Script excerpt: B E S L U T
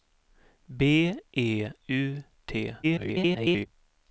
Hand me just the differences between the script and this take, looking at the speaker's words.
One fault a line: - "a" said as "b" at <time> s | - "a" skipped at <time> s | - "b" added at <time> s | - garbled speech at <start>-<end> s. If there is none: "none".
- "S L" skipped at 1.7 s
- garbled speech at 2.8-3.7 s